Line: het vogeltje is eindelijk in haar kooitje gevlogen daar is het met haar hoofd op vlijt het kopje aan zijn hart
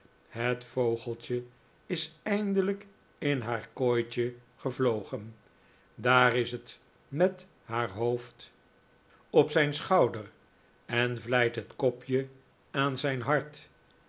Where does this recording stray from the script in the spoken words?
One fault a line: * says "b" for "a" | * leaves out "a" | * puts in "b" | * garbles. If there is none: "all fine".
* puts in "zijn schouder en"